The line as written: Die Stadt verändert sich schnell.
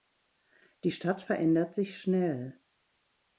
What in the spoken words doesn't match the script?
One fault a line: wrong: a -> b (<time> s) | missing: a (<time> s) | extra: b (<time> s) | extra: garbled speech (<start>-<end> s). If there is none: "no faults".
no faults